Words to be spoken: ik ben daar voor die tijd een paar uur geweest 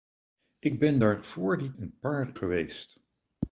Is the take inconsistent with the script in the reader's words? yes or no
yes